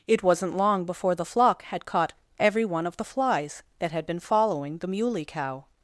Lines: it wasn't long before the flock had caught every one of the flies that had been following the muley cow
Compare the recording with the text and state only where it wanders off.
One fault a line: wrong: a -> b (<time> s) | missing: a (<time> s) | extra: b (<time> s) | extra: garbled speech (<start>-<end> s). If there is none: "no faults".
no faults